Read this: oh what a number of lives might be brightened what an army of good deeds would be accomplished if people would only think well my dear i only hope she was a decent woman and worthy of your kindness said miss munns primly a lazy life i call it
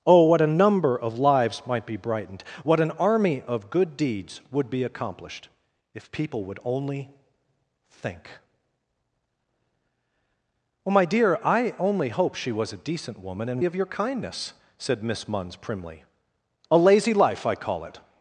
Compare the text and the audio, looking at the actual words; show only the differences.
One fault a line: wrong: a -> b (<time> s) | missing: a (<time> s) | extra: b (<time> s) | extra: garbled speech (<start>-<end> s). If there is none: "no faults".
missing: worthy (13.6 s)